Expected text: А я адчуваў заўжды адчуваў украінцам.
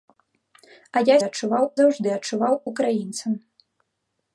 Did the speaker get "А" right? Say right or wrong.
right